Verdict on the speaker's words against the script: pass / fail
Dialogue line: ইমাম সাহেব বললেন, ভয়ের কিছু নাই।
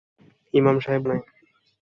fail